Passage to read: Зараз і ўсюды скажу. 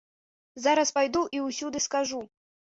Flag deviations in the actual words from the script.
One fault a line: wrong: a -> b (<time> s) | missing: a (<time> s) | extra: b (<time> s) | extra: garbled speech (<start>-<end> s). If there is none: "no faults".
extra: пайду (1.0 s)